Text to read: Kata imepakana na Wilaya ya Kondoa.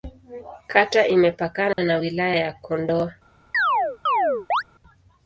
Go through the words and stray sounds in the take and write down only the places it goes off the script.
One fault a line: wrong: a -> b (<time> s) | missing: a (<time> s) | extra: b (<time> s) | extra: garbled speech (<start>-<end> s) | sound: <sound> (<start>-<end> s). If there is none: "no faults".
sound: dropout (1.7-1.8 s)
sound: chirp (3.5-4.6 s)